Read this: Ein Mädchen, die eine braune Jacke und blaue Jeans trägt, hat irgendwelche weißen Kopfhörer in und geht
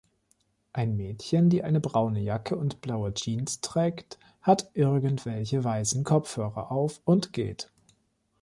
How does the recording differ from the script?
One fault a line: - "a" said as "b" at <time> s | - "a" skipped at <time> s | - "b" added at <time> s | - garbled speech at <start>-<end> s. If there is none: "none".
- "in" said as "auf" at 6.7 s